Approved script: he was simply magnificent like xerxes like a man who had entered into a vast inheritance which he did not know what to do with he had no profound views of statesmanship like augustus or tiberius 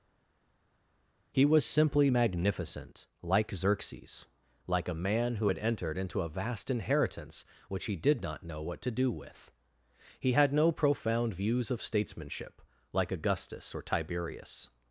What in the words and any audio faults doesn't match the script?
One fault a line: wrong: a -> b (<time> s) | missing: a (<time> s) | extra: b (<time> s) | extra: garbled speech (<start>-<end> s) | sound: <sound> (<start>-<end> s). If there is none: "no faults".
no faults